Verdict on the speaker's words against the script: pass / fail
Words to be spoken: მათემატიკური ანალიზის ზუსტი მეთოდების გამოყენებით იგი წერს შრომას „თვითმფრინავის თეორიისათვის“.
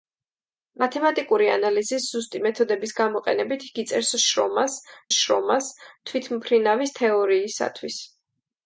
fail